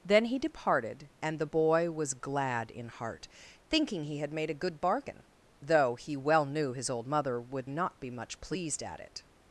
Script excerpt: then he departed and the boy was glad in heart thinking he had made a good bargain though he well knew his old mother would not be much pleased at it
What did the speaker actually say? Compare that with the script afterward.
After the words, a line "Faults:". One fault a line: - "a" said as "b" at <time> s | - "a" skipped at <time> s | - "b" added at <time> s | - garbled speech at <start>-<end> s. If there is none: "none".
then he departed and the boy was glad in heart thinking he had made a good bargain though he well knew his old mother would not be much pleased at it
Faults:
none